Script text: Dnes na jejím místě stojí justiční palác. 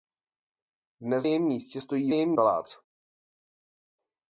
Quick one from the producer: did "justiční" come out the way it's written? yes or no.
no